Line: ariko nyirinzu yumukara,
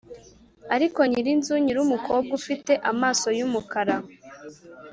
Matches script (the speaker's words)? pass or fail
fail